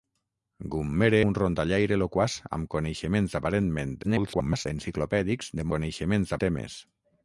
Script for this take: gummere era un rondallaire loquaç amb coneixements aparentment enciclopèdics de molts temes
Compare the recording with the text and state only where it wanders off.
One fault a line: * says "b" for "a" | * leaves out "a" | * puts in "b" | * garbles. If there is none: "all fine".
* leaves out "era"
* garbles
* says "coneixements" for "molts"